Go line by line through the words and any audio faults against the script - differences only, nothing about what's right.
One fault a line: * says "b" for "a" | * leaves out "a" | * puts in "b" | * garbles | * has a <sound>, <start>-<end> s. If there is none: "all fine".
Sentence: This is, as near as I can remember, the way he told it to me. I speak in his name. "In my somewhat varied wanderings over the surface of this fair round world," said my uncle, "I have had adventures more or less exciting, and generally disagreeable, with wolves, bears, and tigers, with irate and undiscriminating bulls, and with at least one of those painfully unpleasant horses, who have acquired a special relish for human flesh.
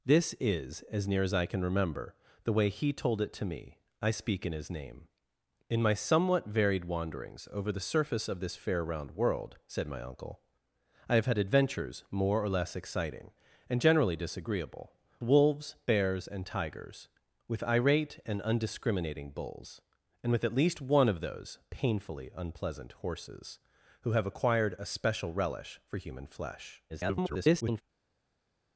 * leaves out "with"
* garbles